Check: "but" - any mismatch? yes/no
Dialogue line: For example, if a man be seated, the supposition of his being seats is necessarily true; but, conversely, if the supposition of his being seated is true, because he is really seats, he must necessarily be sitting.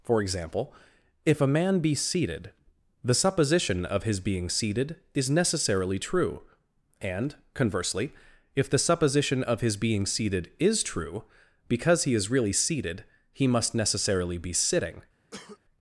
yes